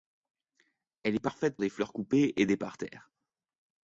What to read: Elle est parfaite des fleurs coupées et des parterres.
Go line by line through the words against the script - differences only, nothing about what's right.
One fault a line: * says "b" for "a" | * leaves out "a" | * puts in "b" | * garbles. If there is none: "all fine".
all fine